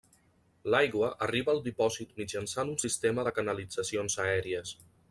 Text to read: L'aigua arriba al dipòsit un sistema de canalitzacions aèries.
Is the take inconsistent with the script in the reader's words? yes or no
yes